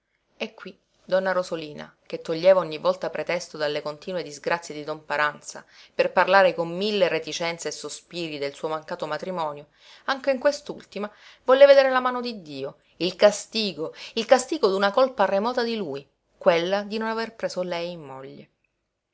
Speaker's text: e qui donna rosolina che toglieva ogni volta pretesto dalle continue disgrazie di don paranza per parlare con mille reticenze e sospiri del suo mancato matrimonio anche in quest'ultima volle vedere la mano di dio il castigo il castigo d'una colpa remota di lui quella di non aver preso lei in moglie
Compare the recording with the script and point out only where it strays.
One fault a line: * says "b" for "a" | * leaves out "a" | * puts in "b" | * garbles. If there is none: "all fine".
all fine